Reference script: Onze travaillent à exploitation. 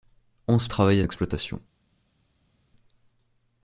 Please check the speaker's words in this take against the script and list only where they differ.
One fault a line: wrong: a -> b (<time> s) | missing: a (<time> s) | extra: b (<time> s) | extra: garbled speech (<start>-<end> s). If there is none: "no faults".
no faults